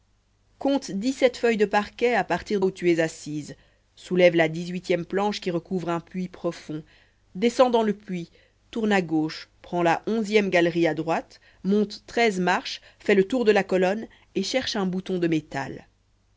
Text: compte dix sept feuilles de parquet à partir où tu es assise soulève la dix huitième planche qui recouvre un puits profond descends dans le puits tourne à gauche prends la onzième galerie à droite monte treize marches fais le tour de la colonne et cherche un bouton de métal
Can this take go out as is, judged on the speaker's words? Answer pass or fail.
pass